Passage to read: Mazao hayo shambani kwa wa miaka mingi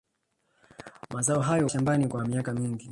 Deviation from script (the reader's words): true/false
false